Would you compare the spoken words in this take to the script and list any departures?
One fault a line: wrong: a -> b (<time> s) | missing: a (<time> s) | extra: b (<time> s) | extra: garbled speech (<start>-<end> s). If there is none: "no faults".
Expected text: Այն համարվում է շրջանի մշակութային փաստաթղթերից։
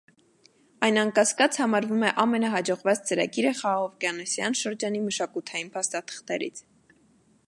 extra: անկասկած (1.0 s)
extra: ամենահաջողված ծրագիրը խաղաղօվկիանոսյան (2.2 s)